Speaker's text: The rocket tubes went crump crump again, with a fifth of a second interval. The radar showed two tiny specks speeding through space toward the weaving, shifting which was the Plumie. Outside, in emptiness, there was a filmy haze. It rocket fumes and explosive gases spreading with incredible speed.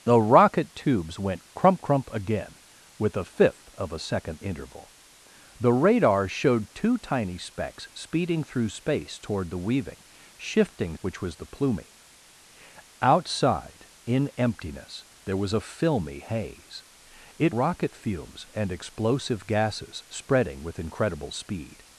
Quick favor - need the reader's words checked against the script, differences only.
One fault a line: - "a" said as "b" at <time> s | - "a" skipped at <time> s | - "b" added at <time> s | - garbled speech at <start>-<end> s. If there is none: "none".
none